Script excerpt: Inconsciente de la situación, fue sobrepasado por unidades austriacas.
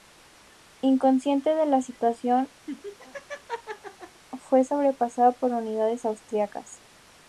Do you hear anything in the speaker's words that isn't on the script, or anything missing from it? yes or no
no